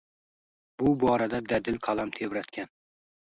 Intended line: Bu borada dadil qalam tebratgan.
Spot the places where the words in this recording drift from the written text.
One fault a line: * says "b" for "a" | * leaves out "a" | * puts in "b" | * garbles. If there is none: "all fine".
all fine